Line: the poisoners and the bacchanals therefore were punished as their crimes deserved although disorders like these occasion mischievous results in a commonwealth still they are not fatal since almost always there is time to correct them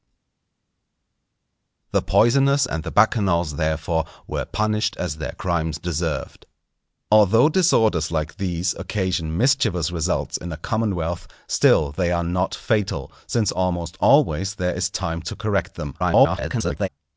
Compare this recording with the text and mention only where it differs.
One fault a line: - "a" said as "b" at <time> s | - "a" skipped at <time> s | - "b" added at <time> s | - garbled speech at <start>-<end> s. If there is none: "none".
- garbled speech at 16.0-16.9 s